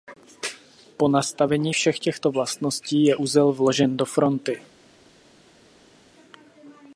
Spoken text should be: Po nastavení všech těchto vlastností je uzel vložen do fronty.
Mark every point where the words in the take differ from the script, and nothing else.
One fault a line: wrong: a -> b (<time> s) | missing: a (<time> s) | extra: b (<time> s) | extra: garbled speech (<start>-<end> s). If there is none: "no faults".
no faults